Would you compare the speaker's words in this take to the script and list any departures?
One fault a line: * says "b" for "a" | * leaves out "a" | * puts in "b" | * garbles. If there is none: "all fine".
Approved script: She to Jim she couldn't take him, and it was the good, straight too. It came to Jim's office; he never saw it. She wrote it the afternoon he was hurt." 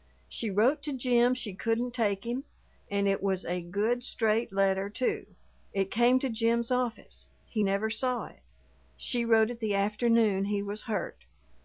* puts in "wrote"
* says "a" for "the"
* puts in "letter"